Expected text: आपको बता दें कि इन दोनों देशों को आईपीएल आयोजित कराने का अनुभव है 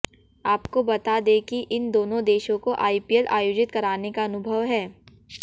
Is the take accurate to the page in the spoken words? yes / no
yes